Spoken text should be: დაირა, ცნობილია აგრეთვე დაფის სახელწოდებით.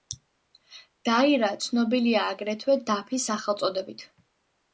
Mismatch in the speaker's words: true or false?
false